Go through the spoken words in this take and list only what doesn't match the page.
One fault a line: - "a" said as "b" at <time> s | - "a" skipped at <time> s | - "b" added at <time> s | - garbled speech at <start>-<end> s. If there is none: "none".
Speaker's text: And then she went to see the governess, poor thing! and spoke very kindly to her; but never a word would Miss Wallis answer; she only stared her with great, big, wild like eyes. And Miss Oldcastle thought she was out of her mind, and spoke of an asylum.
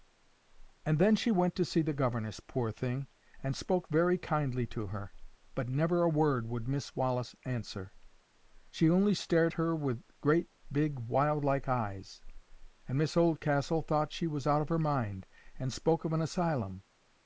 none